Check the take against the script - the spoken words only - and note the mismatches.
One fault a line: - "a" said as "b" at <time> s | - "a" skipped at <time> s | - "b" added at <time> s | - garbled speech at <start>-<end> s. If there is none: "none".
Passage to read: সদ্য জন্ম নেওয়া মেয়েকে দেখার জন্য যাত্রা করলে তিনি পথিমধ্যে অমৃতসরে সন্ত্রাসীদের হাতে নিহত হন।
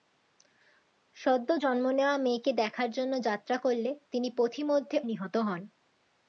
- "অমৃতসরে সন্ত্রাসীদের হাতে" skipped at 5.0 s